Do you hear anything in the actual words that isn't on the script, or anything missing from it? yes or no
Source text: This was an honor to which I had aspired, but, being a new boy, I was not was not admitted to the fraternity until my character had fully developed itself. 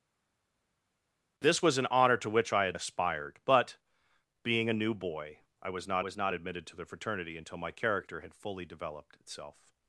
no